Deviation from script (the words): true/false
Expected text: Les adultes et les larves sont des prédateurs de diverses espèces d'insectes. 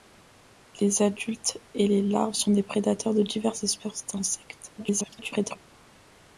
true